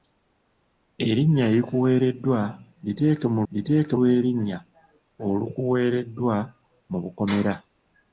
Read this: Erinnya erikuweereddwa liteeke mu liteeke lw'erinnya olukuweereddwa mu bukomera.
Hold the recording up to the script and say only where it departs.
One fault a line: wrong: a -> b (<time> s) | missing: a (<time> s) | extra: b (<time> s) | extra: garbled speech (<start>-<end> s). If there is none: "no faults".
no faults